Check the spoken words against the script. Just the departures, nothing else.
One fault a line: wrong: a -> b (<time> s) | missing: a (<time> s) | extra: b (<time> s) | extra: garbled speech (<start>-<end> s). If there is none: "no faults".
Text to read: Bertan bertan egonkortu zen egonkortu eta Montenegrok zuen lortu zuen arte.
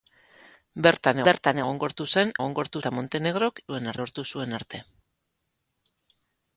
no faults